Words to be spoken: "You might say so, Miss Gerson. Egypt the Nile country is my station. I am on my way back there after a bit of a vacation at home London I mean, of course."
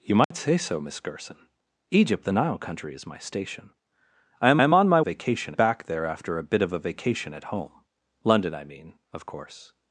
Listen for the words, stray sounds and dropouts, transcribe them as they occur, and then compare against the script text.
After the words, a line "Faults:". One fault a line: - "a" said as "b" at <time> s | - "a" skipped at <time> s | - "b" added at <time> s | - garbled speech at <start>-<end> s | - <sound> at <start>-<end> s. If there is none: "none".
"You might say so, Miss Gerson. Egypt the Nile country is my station. I am am on my vacation back there after a bit of a vacation at home London I mean, of course."
Faults:
- dropout at 0.2-0.3 s
- "am" added at 4.6 s
- "way" said as "vacation" at 5.0 s